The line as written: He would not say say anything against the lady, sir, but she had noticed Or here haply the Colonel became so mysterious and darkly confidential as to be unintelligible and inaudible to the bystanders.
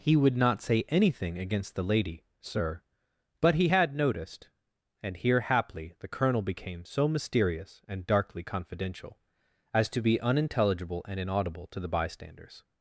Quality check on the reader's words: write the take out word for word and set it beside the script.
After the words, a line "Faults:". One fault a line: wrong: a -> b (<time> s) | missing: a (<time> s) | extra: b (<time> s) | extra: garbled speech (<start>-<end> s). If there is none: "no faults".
He would not say anything against the lady, sir, but he had noticed And here haply the Colonel became so mysterious and darkly confidential as to be unintelligible and inaudible to the bystanders.
Faults:
missing: say (0.8 s)
wrong: she -> he (3.5 s)
wrong: Or -> And (5.0 s)